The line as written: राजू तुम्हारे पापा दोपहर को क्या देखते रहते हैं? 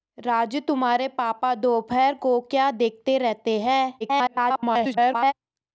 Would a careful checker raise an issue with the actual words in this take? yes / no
yes